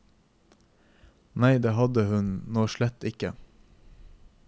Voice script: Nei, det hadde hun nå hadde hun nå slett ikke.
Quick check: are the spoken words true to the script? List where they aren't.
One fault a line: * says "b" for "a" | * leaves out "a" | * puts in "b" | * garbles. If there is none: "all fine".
* leaves out "hadde hun nå"